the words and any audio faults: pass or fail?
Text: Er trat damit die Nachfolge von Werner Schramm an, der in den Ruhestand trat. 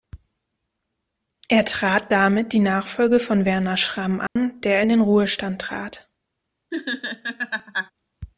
fail